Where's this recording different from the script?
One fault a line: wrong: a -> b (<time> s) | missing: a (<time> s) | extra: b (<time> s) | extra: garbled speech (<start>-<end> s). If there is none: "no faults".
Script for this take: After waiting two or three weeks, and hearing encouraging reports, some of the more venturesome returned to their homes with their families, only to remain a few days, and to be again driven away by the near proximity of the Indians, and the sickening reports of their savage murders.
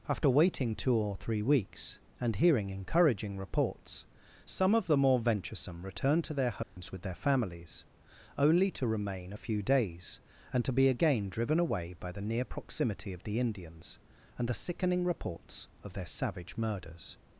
no faults